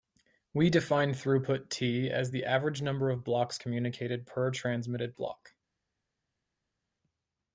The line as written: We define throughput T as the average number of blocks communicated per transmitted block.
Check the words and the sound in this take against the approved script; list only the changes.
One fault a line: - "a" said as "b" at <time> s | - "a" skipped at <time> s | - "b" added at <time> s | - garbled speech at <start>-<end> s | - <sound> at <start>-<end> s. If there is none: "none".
none